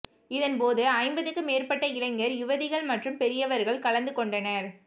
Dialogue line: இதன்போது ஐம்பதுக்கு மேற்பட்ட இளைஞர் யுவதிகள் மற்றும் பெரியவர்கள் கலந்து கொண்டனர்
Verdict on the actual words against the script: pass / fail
pass